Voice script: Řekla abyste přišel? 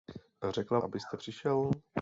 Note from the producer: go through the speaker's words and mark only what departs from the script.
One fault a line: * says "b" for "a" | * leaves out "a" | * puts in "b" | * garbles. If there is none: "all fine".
all fine